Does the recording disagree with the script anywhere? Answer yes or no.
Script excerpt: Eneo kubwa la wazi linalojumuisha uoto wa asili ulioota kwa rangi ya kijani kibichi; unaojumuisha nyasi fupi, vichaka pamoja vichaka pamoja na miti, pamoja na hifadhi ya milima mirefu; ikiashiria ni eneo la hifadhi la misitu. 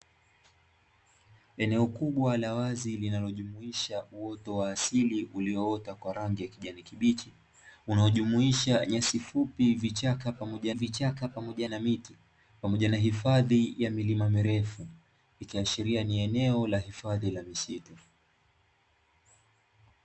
no